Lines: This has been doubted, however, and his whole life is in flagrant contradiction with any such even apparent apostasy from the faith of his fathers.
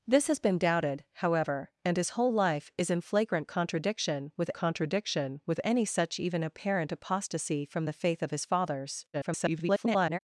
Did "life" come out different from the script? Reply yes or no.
no